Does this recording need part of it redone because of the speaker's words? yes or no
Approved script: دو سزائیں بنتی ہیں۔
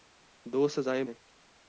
yes